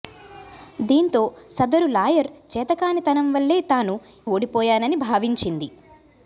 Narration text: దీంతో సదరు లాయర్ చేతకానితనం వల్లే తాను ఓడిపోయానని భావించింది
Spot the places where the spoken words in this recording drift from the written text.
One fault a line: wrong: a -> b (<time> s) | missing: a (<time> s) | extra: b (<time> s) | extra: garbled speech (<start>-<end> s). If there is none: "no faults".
no faults